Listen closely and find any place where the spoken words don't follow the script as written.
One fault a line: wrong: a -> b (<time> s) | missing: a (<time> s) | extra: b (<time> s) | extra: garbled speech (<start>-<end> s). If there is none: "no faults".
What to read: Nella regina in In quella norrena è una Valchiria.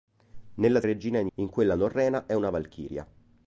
no faults